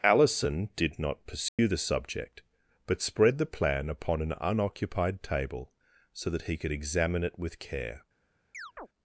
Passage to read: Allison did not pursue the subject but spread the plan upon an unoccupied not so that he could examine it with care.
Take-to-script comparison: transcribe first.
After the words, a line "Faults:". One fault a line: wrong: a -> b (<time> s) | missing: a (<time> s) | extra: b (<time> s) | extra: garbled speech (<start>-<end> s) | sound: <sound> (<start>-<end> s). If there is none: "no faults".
Allison did not pursue the subject but spread the plan upon an unoccupied table so that he could examine it with care.
Faults:
sound: dropout (1.5-1.6 s)
wrong: not -> table (5.2 s)
sound: chirp (8.5-8.9 s)